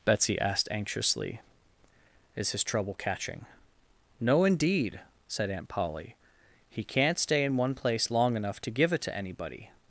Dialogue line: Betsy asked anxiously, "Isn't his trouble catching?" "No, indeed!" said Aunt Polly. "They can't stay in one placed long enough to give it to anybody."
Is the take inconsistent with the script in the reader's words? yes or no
yes